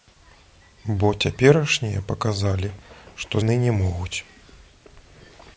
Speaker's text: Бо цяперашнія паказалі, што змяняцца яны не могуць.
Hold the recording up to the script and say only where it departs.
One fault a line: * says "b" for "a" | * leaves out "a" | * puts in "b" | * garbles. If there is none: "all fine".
* leaves out "змяняцца"